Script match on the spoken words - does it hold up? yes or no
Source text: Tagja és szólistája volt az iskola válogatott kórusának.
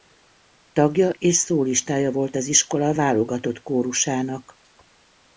yes